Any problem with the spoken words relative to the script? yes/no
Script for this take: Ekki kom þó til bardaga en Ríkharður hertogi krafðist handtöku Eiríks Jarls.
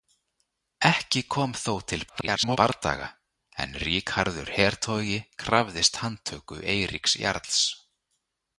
yes